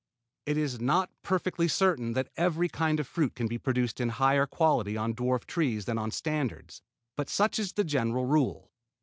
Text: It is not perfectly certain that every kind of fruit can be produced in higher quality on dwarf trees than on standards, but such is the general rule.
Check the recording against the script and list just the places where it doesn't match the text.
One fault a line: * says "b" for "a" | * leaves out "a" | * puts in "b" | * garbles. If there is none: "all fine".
all fine